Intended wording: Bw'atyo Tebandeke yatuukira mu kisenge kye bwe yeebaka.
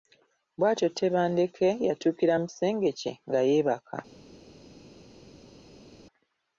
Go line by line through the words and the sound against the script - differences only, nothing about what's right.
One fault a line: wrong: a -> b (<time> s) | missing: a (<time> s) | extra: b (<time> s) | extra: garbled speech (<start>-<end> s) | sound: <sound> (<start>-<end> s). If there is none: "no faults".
wrong: bwe -> nga (3.3 s)